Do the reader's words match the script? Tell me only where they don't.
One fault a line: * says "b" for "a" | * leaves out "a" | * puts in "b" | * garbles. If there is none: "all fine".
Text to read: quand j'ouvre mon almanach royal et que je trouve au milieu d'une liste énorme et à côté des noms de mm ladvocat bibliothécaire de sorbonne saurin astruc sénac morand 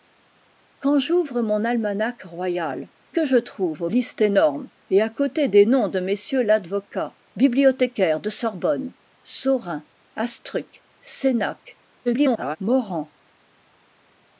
* leaves out "et"
* leaves out "milieu d'une"
* garbles